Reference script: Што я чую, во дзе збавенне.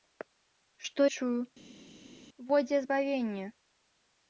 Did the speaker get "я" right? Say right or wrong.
wrong